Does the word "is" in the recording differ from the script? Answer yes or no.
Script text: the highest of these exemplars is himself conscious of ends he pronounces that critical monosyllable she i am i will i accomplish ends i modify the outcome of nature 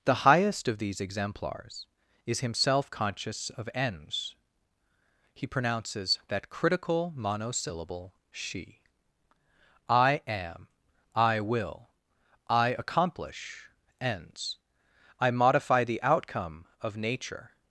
no